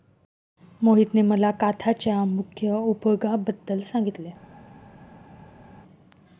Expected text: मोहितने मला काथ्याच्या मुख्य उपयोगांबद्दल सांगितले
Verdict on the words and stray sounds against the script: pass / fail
pass